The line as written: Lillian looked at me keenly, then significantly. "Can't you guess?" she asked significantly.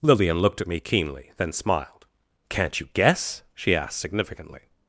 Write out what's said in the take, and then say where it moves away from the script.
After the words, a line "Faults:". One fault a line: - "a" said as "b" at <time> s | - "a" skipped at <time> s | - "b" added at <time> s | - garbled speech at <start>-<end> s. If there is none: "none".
Lillian looked at me keenly, then smiled. "Can't you guess?" she asked significantly.
Faults:
- "significantly" said as "smiled" at 1.5 s